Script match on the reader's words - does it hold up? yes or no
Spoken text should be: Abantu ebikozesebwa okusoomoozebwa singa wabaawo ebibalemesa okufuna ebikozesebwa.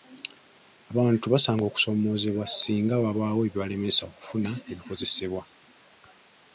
no